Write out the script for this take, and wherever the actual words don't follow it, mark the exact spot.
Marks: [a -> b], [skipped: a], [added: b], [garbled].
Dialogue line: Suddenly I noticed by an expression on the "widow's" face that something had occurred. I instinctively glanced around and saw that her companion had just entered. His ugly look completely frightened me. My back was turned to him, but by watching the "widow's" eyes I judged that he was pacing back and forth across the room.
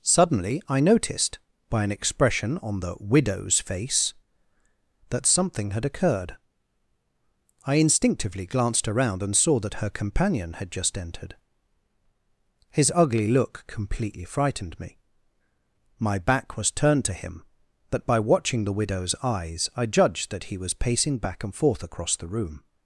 Suddenly I noticed by an expression on the "widow's" face that something had occurred. I instinctively glanced around and saw that her companion had just entered. His ugly look completely frightened me. My back was turned to him, but by watching the "widow's" eyes I judged that he was pacing back and forth across the room.